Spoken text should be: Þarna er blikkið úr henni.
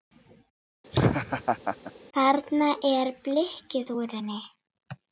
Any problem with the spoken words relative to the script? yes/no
no